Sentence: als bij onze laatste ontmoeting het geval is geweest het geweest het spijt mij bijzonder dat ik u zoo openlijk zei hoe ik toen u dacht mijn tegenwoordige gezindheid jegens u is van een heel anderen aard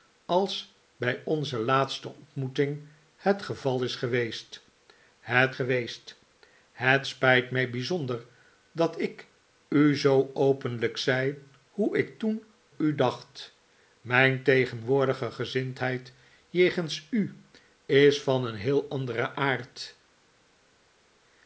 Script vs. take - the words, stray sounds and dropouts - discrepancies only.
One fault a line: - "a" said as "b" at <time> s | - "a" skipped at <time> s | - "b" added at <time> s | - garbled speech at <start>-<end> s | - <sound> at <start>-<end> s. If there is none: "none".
none